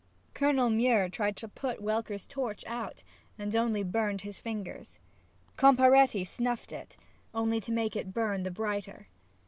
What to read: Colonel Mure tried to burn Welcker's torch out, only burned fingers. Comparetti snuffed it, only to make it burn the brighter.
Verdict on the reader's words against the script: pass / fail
fail